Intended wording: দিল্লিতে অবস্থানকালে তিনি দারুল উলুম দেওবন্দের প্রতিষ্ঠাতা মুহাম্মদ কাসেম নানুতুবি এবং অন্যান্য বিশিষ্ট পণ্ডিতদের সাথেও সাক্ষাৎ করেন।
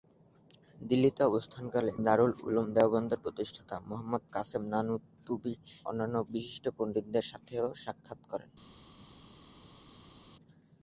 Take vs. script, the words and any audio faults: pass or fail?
fail